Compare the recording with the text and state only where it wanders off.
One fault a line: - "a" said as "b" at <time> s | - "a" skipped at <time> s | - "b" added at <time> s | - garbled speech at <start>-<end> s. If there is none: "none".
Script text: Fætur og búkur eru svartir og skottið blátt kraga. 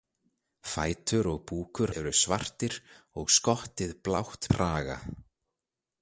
none